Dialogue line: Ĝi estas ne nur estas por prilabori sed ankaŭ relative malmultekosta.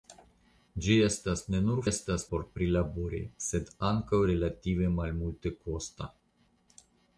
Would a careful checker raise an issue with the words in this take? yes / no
no